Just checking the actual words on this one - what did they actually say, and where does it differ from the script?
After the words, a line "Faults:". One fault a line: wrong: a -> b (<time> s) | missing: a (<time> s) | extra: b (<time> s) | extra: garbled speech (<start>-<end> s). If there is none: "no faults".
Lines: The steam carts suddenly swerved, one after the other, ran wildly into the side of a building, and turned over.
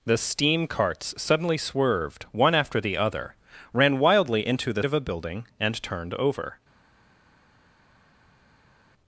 The steam carts suddenly swerved, one after the other, ran wildly into the of a building, and turned over.
Faults:
missing: side (4.8 s)